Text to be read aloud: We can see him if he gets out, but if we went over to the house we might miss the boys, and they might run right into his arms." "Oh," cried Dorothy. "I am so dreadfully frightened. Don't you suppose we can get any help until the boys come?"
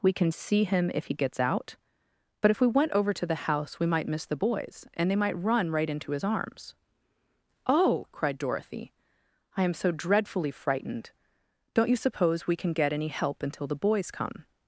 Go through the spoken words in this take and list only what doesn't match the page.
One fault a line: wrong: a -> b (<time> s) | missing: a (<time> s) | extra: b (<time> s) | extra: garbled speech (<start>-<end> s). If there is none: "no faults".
no faults